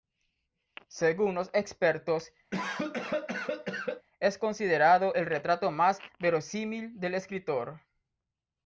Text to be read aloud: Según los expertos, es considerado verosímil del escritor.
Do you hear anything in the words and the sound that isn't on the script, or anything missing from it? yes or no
yes